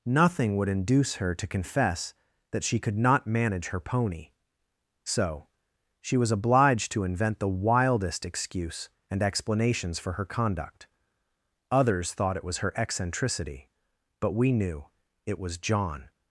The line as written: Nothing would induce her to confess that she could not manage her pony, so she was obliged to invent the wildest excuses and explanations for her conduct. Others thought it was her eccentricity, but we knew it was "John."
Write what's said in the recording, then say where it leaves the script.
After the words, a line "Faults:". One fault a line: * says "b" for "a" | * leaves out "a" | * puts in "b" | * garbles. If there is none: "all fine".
Nothing would induce her to confess that she could not manage her pony, so she was obliged to invent the wildest excuse and explanations for her conduct. Others thought it was her eccentricity, but we knew it was "John."
Faults:
* says "excuse" for "excuses"